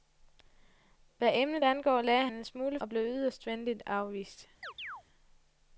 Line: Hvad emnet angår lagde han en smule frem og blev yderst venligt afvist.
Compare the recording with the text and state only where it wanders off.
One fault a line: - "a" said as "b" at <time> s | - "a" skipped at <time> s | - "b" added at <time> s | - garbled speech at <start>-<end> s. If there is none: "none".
- "han" skipped at 2.3 s
- "frem" skipped at 2.8 s